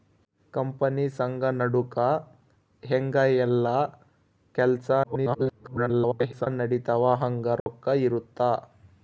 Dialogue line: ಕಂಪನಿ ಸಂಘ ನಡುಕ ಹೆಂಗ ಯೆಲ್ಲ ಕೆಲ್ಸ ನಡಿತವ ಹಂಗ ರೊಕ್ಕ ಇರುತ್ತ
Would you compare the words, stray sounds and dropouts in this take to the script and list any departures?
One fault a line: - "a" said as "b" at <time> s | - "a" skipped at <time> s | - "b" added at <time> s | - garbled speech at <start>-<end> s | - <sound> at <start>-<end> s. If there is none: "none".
- garbled speech at 5.0-6.5 s
- dropout at 7.6-7.7 s